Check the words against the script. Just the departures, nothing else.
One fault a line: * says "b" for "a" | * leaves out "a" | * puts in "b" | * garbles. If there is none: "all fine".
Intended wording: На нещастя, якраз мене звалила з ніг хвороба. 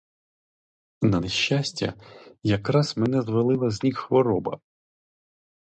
all fine